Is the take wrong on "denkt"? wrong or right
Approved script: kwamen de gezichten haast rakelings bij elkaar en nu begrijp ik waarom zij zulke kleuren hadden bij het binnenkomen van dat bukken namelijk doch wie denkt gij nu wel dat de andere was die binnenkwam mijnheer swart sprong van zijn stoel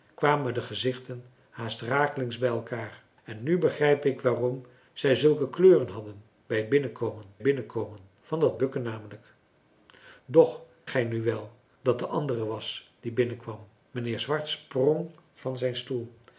wrong